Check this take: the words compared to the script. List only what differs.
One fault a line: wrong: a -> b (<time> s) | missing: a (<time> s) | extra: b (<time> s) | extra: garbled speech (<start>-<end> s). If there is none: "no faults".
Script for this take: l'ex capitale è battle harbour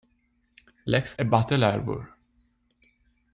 missing: capitale (1.1 s)